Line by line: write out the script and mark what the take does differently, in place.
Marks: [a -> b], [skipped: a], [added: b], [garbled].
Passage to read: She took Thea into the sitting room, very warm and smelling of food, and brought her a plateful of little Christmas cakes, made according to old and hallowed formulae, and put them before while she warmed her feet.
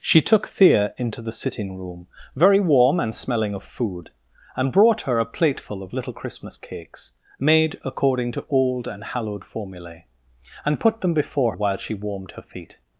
She took Thea into the sitting room, very warm and smelling of food, and brought her a plateful of little Christmas cakes, made according to old and hallowed formulae, and put them before while she warmed her feet.